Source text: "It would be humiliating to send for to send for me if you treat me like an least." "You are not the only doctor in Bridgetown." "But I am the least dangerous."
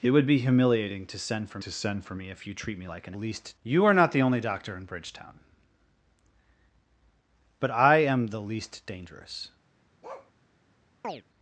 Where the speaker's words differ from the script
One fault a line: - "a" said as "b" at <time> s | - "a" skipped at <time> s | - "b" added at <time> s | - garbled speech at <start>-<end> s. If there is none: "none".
none